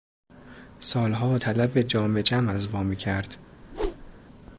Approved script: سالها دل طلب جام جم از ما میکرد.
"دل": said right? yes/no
no